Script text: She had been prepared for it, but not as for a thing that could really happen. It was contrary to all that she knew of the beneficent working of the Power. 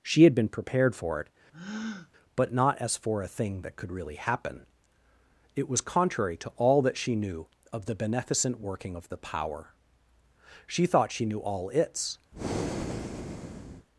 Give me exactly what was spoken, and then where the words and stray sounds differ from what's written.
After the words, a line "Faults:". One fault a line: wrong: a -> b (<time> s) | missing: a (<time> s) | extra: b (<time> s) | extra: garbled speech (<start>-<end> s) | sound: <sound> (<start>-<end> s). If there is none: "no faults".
She had been prepared for it, but not as for a thing that could really happen. It was contrary to all that she knew of the beneficent working of the Power. She thought she knew all its
Faults:
sound: breath (1.5-2.1 s)
extra: She thought she knew all its (10.7 s)
sound: breath (12.3-13.9 s)